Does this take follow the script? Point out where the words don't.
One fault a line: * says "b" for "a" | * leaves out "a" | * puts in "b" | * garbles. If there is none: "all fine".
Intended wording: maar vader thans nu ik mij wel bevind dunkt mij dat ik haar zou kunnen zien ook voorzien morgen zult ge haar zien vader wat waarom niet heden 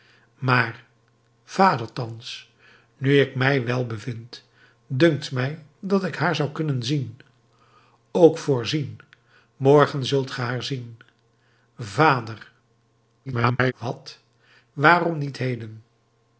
* garbles